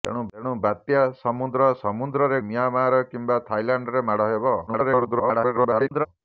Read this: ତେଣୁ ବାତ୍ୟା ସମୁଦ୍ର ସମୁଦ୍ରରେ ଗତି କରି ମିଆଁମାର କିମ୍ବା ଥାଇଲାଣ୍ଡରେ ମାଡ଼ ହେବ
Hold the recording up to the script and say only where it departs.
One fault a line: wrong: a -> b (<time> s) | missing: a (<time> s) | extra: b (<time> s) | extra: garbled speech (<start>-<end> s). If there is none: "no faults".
missing: ଗତି କରି (2.4 s)
extra: garbled speech (4.7-6.1 s)